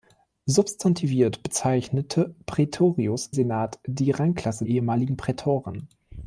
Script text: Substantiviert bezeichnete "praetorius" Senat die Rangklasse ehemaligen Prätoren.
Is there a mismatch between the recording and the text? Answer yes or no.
no